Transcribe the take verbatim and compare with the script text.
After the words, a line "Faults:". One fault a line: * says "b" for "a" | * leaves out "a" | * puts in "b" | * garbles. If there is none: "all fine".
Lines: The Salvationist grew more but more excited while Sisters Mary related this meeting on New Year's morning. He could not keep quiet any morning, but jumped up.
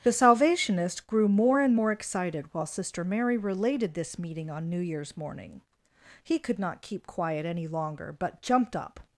The Salvationist grew more and more excited while Sister Mary related this meeting on New Year's morning. He could not keep quiet any longer, but jumped up.
Faults:
* says "and" for "but"
* says "Sister" for "Sisters"
* says "longer" for "morning"